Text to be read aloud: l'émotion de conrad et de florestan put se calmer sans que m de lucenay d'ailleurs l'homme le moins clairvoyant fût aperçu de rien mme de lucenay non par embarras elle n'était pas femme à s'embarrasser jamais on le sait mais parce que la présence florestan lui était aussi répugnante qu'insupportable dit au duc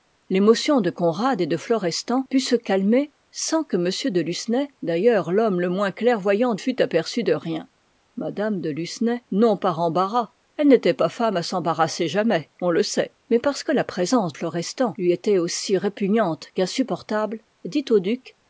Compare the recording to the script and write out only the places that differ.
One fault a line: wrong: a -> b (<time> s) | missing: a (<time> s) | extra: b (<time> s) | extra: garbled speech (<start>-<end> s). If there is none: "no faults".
no faults